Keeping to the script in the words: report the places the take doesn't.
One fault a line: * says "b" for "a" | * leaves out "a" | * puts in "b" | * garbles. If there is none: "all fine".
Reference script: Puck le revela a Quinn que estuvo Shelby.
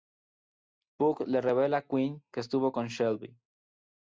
* puts in "con"